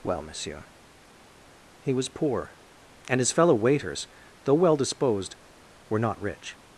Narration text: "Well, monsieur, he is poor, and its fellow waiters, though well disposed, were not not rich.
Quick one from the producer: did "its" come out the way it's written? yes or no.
no